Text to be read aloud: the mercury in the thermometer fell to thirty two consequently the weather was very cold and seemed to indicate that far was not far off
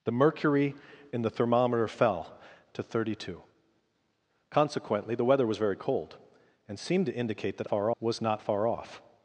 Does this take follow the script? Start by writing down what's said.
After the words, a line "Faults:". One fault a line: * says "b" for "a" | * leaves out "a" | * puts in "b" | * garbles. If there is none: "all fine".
the mercury in the thermometer fell to thirty two consequently the weather was very cold and seemed to indicate that far was not far off
Faults:
all fine